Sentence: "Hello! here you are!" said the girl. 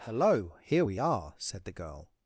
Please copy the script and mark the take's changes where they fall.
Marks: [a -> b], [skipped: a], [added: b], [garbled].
"Hello! here [you -> we] are!" said the girl.